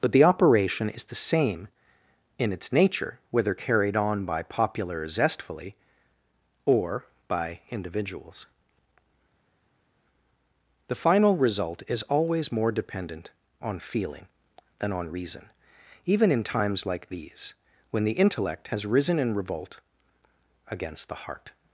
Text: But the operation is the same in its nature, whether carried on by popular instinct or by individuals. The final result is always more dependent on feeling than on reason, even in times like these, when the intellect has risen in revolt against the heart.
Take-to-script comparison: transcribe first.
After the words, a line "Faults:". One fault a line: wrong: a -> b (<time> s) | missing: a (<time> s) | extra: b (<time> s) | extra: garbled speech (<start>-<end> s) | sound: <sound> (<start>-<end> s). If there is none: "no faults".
But the operation is the same in its nature, whether carried on by popular zestfully or by individuals. The final result is always more dependent on feeling than on reason, even in times like these, when the intellect has risen in revolt against the heart.
Faults:
wrong: instinct -> zestfully (5.1 s)